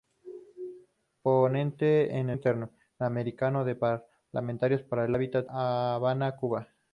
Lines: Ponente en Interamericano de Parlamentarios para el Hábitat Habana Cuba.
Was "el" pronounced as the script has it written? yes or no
yes